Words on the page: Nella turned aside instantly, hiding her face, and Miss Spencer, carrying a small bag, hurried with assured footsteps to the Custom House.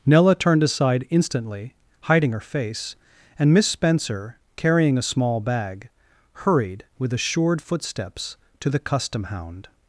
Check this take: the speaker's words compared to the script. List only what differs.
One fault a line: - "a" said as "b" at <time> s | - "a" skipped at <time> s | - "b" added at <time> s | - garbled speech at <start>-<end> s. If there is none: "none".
- "House" said as "Hound" at 9.2 s